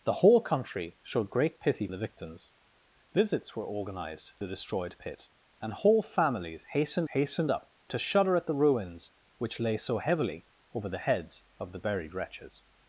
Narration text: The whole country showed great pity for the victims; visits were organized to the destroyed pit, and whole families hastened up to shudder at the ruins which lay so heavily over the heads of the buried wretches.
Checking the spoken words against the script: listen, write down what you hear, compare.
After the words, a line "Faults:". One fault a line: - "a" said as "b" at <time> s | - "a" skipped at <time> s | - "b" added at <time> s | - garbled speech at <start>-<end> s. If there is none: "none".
The whole country showed great pity the victims; visits were organized the destroyed pit, and whole families hastened hastened up to shudder at the ruins which lay so heavily over the heads of the buried wretches.
Faults:
- "for" skipped at 1.9 s
- "to" skipped at 4.3 s
- "hastened" added at 7.1 s